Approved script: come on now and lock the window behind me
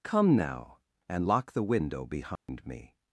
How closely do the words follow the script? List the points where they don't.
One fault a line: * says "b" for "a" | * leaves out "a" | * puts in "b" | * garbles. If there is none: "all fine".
* leaves out "on"